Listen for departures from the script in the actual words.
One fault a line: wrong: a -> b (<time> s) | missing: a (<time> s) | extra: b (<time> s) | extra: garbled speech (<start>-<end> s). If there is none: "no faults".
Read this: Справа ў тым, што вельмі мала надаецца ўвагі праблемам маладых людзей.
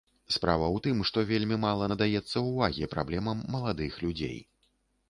no faults